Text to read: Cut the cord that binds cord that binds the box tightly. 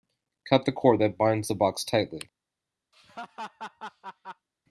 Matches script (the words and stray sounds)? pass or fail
fail